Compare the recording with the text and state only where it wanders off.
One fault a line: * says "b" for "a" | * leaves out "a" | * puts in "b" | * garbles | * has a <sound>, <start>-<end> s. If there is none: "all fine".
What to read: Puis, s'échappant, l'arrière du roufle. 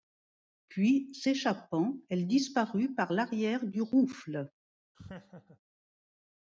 * puts in "elle disparut par"
* has a laugh, 4.9-5.6 s